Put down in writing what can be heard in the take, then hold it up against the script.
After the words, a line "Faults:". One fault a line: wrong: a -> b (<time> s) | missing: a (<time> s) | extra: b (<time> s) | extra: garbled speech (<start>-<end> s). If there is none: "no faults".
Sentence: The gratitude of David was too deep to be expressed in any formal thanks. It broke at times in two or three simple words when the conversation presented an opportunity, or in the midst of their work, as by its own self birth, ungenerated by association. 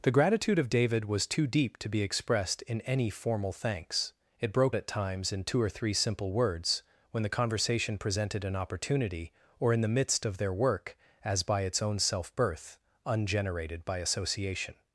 The gratitude of David was too deep to be expressed in any formal thanks. It broke at times in two or three simple words when the conversation presented an opportunity, or in the midst of their work, as by its own self birth, ungenerated by association.
Faults:
no faults